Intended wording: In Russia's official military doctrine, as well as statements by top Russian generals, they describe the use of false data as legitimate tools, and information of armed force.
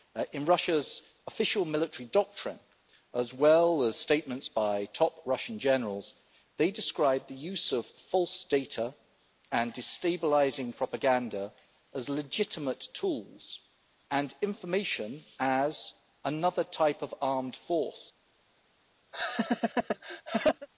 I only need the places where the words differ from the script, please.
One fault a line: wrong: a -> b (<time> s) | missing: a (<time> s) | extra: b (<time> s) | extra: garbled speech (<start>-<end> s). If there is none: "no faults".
extra: and destabilising propaganda (9.5 s)
extra: as another type (15.4 s)